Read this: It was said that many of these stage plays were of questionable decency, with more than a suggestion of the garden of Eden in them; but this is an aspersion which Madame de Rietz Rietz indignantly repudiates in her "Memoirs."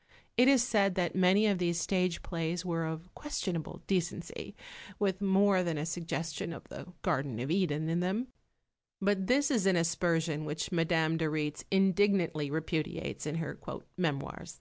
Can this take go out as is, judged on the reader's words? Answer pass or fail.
fail